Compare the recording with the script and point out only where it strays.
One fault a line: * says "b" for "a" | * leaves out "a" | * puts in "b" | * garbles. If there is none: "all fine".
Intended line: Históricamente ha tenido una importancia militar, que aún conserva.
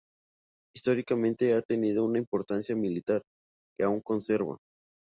all fine